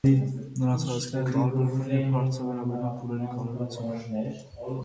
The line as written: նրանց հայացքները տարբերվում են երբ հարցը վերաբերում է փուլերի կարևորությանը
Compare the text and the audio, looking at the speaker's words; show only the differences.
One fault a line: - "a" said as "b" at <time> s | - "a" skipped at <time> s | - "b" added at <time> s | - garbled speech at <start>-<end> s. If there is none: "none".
none